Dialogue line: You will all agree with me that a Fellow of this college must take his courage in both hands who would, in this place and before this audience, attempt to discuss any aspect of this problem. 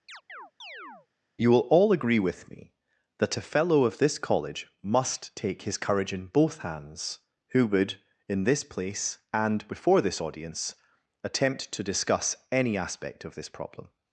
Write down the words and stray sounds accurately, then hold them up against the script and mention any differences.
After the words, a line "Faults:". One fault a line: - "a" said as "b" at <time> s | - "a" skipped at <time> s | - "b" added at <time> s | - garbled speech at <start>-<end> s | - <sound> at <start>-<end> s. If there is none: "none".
You will all agree with me that a Fellow of this college must take his courage in both hands who would, in this place and before this audience, attempt to discuss any aspect of this problem.
Faults:
- chirp at 0.1-1.1 s